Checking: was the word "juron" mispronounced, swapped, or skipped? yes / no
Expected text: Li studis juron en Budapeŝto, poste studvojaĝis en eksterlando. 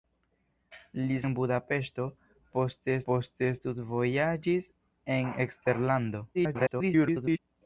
yes